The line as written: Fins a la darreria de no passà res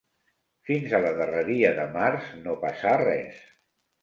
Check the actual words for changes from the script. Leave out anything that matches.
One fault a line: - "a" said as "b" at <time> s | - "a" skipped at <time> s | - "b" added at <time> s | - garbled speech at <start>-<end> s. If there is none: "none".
- "març" added at 2.0 s